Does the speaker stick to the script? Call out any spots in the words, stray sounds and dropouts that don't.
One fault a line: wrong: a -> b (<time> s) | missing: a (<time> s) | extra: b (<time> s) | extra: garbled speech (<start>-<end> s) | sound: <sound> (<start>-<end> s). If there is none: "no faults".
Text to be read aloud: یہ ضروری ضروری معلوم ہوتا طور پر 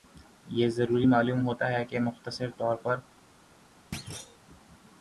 missing: ضروری (1.1 s)
extra: ہے کہ مختصر (1.7 s)
sound: thud (3.9-4.4 s)